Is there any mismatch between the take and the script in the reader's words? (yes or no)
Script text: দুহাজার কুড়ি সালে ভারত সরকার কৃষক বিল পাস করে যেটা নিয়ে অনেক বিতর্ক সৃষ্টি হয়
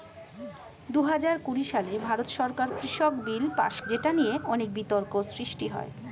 yes